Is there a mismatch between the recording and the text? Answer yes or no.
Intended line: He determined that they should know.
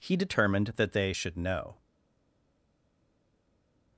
no